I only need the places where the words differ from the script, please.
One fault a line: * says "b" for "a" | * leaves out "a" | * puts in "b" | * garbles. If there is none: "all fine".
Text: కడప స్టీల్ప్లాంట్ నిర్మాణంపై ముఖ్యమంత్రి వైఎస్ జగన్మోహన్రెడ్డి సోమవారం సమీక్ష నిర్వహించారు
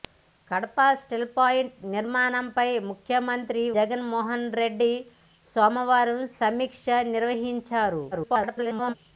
* leaves out "వైఎస్"
* garbles